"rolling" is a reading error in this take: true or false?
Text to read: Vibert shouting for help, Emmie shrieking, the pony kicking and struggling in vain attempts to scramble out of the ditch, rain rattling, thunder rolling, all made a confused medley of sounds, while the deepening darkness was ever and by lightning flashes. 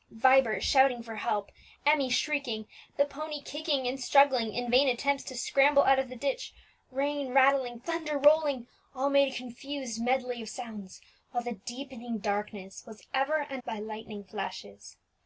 false